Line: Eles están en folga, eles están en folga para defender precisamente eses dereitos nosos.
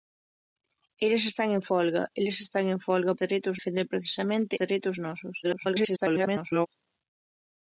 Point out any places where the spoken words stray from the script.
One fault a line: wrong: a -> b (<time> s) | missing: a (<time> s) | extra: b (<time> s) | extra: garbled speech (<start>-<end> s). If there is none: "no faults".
wrong: para -> dereitos (3.2 s)
missing: eses (4.5 s)
extra: garbled speech (5.4-6.7 s)